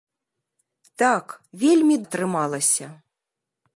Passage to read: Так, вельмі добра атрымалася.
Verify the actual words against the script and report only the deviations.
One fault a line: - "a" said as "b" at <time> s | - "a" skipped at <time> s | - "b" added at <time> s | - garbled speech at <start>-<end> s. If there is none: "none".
- "добра" skipped at 2.0 s